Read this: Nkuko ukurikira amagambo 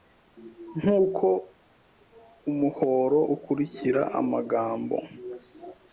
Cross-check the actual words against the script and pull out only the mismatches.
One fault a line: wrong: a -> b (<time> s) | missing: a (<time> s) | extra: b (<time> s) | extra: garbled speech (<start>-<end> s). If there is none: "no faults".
extra: umuhoro (2.5 s)